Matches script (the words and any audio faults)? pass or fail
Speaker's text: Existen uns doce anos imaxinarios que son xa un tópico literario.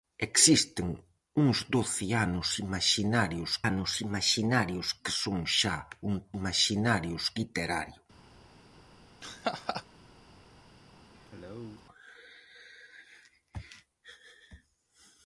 fail